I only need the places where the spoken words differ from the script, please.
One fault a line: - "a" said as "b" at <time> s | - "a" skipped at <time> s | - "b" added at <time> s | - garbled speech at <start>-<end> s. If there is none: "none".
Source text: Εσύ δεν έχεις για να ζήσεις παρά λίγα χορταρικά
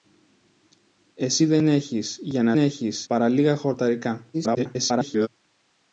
- "ζήσεις" said as "έχεις" at 2.6 s
- garbled speech at 4.3-5.3 s